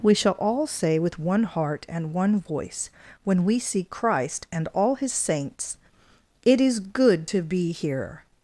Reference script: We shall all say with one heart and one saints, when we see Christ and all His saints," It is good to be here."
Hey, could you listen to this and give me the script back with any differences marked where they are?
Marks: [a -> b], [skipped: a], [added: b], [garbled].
We shall all say with one heart and one [saints, -> voice] when we see Christ and all His saints," It is good to be here."